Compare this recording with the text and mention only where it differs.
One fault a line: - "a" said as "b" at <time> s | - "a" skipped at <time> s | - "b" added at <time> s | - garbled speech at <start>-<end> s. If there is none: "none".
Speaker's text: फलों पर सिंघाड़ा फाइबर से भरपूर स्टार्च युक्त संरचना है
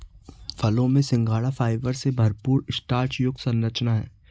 - "पर" said as "में" at 0.9 s